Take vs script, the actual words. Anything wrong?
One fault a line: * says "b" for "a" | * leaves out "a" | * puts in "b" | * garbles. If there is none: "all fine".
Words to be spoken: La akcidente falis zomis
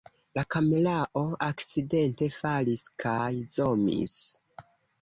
* puts in "kamerao"
* puts in "kaj"